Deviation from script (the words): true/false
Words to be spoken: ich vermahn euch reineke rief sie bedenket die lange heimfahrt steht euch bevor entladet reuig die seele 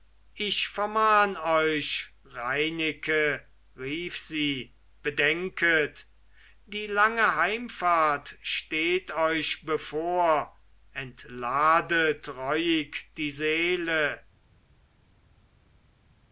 false